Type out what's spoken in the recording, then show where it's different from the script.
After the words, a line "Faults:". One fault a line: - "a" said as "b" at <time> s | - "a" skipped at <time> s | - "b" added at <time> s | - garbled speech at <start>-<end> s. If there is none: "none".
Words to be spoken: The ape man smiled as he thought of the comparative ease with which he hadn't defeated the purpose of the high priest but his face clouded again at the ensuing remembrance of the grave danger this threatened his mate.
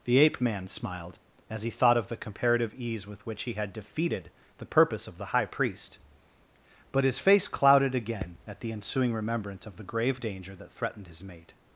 The ape man smiled as he thought of the comparative ease with which he had defeated the purpose of the high priest but his face clouded again at the ensuing remembrance of the grave danger that threatened his mate.
Faults:
- "hadn't" said as "had" at 3.5 s
- "this" said as "that" at 10.6 s